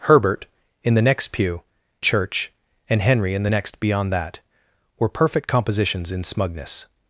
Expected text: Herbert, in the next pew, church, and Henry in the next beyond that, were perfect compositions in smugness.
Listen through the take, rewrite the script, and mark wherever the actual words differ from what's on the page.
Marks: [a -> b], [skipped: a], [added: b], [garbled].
Herbert, in the next pew, church, and Henry in the next beyond that, were perfect compositions in smugness.